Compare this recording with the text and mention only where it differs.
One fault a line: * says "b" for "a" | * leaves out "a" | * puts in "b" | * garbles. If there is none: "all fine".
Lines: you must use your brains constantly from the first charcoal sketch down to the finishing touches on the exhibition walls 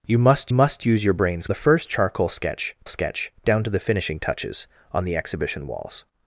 * puts in "must"
* leaves out "constantly from"
* puts in "sketch"